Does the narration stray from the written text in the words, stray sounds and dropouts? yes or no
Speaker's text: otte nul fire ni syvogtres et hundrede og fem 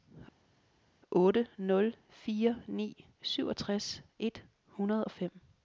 no